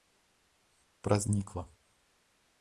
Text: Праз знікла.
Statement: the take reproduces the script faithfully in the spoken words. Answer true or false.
true